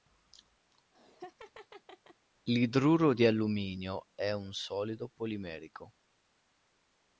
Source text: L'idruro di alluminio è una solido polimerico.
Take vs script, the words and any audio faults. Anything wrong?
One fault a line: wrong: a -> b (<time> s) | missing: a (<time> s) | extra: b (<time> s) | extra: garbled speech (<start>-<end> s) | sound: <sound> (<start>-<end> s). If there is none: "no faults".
sound: laugh (0.7-2.3 s)
wrong: una -> un (4.3 s)